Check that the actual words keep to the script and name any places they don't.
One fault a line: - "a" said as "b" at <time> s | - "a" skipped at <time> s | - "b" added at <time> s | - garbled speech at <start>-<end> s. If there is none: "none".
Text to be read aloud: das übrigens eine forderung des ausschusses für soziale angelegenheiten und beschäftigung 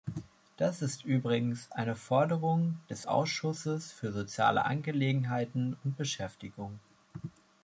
- "ist" added at 0.8 s